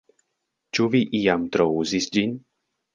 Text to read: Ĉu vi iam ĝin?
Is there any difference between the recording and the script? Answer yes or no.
yes